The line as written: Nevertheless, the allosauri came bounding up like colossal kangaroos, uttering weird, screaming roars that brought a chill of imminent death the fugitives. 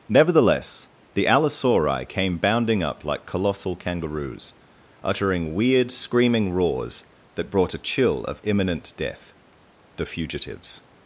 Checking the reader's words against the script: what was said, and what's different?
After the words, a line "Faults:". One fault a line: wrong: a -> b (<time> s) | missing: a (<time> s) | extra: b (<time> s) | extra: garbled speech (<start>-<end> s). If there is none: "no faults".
Nevertheless, the allosauri came bounding up like colossal kangaroos, uttering weird, screaming roars that brought a chill of imminent death the fugitives.
Faults:
no faults